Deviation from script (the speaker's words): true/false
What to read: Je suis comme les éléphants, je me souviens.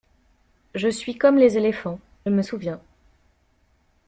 true